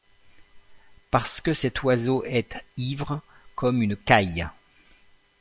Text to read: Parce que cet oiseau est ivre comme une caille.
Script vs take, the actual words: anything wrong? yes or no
no